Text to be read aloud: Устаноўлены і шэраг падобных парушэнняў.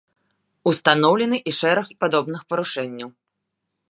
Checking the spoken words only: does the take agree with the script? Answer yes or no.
yes